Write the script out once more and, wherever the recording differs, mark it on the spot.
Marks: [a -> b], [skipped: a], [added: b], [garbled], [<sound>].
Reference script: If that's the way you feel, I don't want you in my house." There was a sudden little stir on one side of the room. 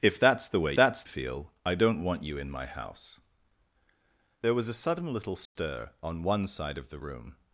If that's the way [you -> that's] feel, I don't want you in my house." There was a sudden little stir [dropout] on one side of the room.